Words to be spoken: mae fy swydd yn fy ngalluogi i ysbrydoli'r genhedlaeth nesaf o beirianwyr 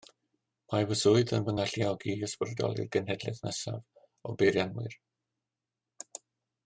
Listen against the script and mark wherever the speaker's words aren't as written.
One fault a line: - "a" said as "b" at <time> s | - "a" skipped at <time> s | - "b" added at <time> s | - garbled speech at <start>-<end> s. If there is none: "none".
none